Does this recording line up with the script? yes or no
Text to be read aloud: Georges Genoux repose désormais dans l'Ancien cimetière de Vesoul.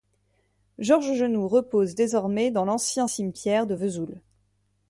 yes